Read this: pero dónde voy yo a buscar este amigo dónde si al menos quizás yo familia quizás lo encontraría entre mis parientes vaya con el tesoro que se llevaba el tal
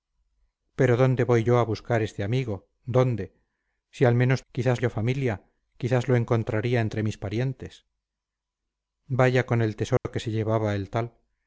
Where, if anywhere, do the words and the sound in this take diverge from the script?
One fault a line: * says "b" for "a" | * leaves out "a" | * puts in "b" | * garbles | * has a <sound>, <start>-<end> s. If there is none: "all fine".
* has a dropout, 10.0-10.1 s